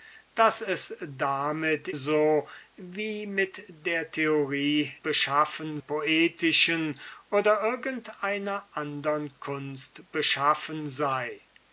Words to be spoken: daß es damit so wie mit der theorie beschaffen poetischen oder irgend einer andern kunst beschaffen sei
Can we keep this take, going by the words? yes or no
yes